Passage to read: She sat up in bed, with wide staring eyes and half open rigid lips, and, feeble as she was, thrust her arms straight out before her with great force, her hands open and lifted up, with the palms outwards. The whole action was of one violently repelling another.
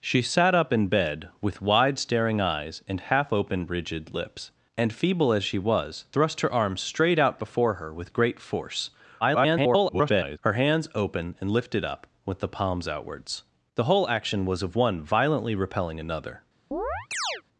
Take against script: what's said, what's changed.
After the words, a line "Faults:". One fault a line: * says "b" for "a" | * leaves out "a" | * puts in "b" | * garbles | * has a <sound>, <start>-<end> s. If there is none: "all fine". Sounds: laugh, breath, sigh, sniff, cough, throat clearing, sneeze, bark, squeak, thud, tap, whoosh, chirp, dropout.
She sat up in bed, with wide staring eyes and half open rigid lips, and, feeble as she was, thrust her arms straight out before her with great force, [garbled] her hands open and lifted up, with the palms outwards. The whole action was of one violently repelling another.
Faults:
* garbles
* has a chirp, 16.7-17.4 s